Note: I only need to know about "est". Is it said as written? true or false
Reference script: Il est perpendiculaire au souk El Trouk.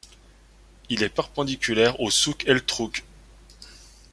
true